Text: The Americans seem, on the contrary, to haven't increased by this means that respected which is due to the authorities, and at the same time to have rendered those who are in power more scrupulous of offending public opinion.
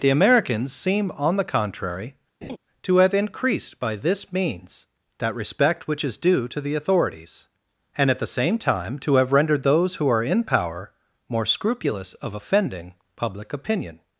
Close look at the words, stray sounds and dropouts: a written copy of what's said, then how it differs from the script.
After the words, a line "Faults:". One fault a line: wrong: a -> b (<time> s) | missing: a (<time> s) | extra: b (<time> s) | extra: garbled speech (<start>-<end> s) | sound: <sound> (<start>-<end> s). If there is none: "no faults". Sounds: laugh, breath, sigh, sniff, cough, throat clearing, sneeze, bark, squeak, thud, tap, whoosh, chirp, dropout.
The Americans seem, on the contrary, to have increased by this means that respect which is due to the authorities, and at the same time to have rendered those who are in power more scrupulous of offending public opinion.
Faults:
sound: laugh (2.4-2.6 s)
wrong: haven't -> have (3.0 s)
wrong: respected -> respect (5.3 s)